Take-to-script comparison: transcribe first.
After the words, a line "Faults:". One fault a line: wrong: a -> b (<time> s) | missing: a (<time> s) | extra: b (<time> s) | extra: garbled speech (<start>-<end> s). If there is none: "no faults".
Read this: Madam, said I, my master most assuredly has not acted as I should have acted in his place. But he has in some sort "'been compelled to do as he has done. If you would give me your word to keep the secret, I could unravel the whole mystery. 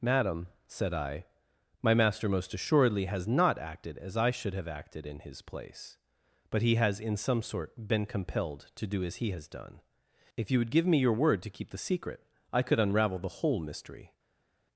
Madam, said I, my master most assuredly has not acted as I should have acted in his place. But he has in some sort "'been compelled to do as he has done. If you would give me your word to keep the secret, I could unravel the whole mystery.
Faults:
no faults